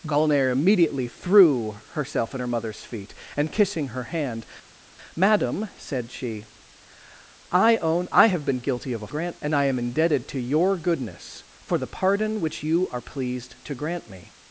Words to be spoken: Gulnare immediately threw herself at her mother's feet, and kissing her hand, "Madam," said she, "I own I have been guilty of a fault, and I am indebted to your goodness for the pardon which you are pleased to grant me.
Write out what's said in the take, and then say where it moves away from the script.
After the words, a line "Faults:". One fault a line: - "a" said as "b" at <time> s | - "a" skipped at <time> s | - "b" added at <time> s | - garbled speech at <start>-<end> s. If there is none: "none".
Gulnare immediately threw herself at her mother's feet, and kissing her hand, "Madam," said she, "I own I have been guilty of a grant, and I am indebted to your goodness for the pardon which you are pleased to grant me.
Faults:
- "fault" said as "grant" at 9.1 s